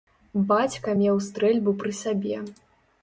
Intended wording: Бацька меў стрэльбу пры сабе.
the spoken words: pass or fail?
pass